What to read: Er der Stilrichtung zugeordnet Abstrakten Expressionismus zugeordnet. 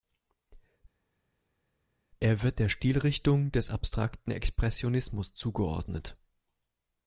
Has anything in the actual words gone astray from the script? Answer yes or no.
yes